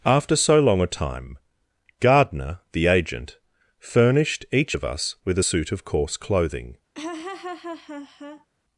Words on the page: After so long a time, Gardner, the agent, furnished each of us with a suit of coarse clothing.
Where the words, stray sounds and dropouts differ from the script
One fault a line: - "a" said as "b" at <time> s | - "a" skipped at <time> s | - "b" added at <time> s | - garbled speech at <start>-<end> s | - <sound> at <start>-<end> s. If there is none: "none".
- laugh at 6.9-8.5 s